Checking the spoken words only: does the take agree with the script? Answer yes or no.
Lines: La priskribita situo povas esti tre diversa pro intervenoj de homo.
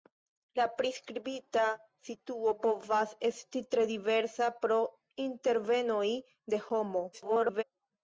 no